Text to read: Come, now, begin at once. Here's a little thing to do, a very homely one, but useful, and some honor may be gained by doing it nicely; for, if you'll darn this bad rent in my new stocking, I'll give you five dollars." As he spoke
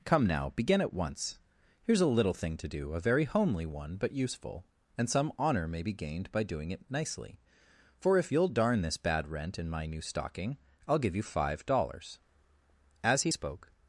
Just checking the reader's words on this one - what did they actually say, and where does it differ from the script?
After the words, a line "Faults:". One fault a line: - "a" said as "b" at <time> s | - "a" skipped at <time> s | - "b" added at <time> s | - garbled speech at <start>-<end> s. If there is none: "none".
Come, now, begin at once. Here's a little thing to do, a very homely one, but useful, and some honor may be gained by doing it nicely; for, if you'll darn this bad rent in my new stocking, I'll give you five dollars." As he spoke
Faults:
none